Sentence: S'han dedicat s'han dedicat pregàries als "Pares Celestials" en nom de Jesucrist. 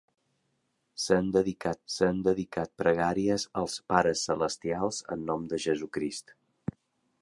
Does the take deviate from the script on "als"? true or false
false